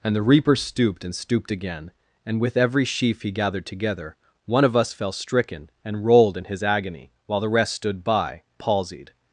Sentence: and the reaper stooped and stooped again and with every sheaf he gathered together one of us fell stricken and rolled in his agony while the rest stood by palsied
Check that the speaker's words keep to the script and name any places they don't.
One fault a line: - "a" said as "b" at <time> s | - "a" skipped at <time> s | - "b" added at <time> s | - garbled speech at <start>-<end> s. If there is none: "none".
none